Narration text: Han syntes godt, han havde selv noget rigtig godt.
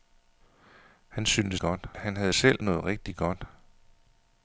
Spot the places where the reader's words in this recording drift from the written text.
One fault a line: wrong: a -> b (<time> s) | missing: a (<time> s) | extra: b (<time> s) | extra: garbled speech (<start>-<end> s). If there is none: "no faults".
no faults